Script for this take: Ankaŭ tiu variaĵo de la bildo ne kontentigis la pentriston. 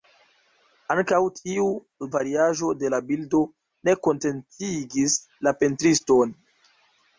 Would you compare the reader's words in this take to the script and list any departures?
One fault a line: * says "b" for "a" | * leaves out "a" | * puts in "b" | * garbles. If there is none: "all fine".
all fine